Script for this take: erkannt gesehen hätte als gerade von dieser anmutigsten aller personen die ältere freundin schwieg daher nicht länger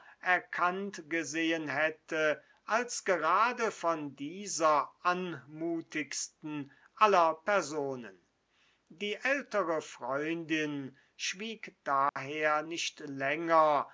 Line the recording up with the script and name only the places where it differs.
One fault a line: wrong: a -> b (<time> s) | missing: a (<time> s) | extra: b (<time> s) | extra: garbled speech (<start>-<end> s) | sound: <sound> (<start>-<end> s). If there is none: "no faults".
sound: dropout (12.1-12.2 s)